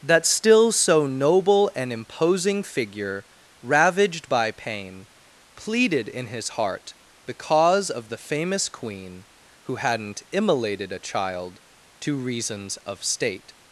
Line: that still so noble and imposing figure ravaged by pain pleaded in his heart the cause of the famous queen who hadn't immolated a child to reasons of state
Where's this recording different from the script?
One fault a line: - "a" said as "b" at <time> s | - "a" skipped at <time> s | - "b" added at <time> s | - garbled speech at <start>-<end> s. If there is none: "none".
none